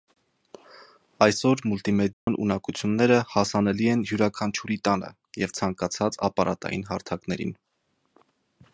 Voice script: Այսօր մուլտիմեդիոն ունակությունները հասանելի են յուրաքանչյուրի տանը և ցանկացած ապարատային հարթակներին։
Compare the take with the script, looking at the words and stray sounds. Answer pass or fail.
fail